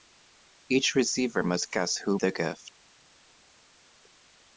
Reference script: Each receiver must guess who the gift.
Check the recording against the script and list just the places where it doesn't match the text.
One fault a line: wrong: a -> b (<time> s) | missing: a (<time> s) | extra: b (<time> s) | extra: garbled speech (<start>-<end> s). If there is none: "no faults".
no faults